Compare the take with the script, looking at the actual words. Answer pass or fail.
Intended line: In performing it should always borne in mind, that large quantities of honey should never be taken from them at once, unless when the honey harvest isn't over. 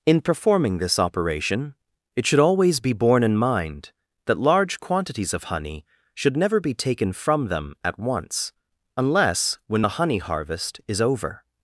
fail